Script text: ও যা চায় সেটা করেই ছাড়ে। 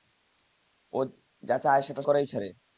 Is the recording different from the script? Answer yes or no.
no